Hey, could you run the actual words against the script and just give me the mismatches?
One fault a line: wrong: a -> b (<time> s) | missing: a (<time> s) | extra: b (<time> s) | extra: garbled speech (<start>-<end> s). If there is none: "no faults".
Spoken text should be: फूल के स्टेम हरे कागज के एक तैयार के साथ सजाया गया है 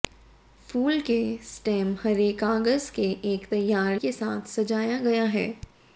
no faults